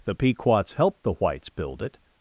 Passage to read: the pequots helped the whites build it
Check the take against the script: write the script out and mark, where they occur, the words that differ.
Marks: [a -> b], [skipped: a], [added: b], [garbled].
the pequots helped the whites build it